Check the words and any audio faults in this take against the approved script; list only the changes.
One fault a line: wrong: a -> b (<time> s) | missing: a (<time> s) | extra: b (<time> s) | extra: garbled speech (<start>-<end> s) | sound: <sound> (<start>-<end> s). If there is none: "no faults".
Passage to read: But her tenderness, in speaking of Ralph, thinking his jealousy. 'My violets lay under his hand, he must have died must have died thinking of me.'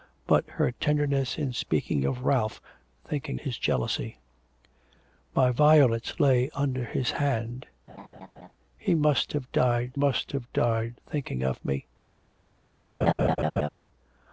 sound: laugh (7.9-8.5 s)
sound: laugh (13.0-13.7 s)